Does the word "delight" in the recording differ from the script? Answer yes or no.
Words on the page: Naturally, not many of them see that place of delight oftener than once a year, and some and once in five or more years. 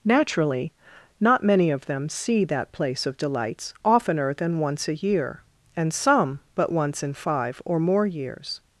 yes